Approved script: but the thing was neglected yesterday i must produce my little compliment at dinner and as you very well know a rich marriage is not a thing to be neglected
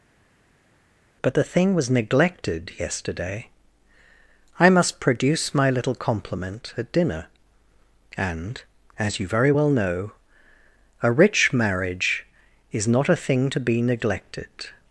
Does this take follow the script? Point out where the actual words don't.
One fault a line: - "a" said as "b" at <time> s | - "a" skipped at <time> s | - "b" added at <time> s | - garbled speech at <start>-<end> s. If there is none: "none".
none